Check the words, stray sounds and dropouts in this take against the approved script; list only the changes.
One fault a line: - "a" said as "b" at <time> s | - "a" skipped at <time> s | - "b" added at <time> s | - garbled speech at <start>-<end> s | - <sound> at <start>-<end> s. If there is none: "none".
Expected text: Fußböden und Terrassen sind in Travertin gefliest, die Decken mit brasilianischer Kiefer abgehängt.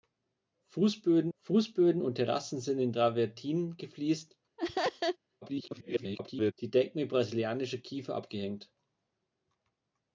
- "fußböden" added at 1.4 s
- laugh at 4.6-5.2 s
- garbled speech at 5.4-6.5 s